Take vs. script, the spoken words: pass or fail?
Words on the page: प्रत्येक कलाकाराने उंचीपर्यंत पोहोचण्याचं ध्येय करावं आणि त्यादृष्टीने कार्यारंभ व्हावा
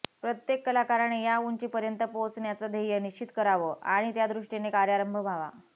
fail